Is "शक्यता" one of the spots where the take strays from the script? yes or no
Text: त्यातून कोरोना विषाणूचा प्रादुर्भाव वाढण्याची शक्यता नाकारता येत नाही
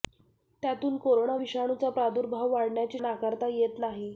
yes